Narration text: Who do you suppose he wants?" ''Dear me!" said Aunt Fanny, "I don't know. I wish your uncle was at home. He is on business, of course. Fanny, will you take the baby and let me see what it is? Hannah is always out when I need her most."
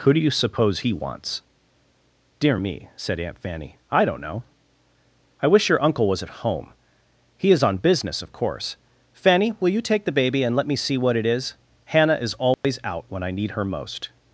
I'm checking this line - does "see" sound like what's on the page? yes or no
yes